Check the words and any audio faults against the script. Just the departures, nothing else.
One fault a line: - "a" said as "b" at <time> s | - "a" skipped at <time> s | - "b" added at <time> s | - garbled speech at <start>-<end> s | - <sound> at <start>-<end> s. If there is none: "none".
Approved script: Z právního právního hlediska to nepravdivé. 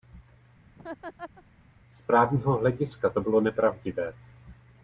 - laugh at 0.8-1.4 s
- "právního" skipped at 2.6 s
- "bylo" added at 3.2 s